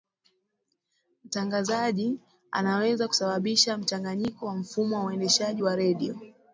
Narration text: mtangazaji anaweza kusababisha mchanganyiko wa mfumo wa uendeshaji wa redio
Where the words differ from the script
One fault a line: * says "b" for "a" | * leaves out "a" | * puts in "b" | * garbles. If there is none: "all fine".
all fine